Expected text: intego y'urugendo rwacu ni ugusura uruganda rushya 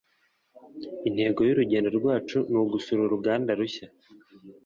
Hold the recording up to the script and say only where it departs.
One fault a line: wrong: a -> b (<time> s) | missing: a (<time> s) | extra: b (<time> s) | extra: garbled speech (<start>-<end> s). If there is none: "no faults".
no faults